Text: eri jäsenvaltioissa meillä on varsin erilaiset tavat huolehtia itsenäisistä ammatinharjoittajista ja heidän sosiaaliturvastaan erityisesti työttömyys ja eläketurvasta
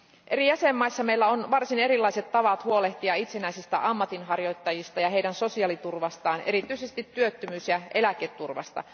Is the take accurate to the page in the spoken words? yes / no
yes